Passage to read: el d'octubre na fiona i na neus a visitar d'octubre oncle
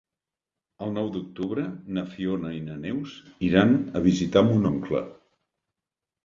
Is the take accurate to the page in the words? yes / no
no